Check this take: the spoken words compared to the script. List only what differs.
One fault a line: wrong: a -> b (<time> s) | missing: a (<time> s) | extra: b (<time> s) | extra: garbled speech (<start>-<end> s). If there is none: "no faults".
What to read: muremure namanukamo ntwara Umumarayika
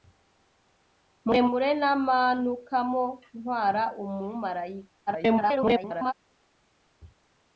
extra: garbled speech (5.1-6.1 s)